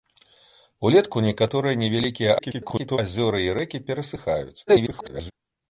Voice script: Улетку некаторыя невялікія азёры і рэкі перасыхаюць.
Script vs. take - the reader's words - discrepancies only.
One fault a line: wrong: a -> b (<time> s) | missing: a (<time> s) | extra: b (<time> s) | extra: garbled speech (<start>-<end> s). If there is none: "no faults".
extra: garbled speech (2.4-3.0 s)
extra: garbled speech (4.7-5.3 s)